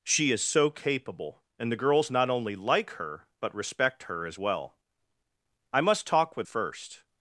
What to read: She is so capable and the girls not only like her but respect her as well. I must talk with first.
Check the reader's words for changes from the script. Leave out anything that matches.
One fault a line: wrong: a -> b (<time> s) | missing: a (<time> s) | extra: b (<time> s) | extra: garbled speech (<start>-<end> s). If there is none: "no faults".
no faults